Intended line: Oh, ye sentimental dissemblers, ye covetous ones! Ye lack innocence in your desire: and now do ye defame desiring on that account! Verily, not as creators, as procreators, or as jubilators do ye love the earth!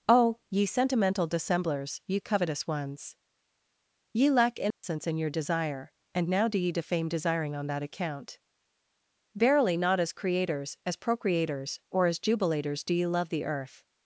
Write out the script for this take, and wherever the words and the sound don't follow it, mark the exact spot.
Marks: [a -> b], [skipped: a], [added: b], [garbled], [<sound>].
Oh, ye sentimental dissemblers, ye covetous ones! Ye lack innocence [dropout] in your desire: and now do ye defame desiring on that account! Verily, not as creators, as procreators, or as jubilators do ye love the earth!